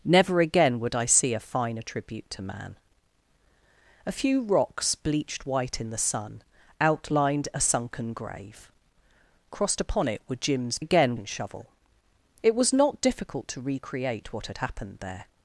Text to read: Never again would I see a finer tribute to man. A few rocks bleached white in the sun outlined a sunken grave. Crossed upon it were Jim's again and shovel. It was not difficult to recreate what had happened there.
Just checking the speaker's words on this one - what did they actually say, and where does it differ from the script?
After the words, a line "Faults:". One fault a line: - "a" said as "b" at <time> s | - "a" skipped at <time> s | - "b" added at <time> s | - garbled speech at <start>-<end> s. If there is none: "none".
Never again would I see a finer tribute to man. A few rocks bleached white in the sun outlined a sunken grave. Crossed upon it were Jim's again and shovel. It was not difficult to recreate what had happened there.
Faults:
none